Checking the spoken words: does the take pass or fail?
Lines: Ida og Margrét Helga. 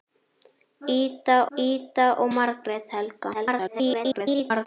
fail